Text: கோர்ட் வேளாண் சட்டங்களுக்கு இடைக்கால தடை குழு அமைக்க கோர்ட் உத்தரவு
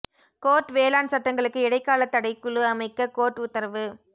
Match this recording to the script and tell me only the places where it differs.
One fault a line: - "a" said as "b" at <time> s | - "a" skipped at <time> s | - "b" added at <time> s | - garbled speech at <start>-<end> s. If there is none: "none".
none